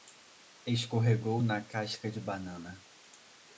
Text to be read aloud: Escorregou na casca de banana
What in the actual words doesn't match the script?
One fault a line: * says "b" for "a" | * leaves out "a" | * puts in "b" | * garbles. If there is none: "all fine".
all fine